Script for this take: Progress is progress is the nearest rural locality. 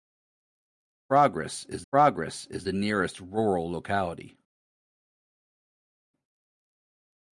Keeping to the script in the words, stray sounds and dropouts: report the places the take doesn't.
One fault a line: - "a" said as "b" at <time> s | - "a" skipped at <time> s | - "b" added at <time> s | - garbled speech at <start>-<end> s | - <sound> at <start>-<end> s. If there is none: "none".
none